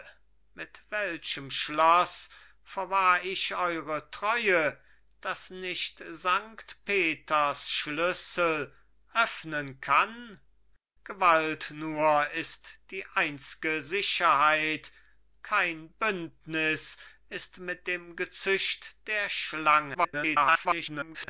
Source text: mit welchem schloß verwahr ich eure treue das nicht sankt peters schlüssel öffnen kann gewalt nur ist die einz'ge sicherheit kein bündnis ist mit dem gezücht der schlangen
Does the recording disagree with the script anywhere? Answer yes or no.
yes